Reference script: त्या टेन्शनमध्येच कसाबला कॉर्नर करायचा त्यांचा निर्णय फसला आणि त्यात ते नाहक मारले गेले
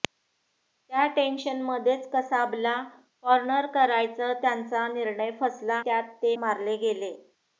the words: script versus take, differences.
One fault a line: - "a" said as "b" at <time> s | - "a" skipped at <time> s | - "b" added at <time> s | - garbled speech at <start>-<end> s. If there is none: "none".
- "आणि" skipped at 5.8 s
- "नाहक" skipped at 6.4 s